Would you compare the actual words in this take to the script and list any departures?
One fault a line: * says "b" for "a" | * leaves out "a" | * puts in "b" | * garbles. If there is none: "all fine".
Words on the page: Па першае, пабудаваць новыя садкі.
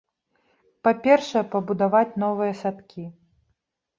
all fine